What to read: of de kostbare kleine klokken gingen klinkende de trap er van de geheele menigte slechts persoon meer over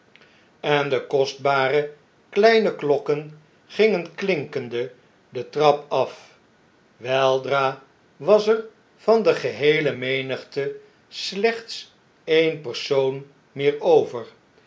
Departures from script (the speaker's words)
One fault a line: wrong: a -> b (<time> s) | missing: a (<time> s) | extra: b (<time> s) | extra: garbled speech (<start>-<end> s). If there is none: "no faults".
wrong: of -> en (0.6 s)
extra: af weldra was (5.9 s)
extra: e'en (12.2 s)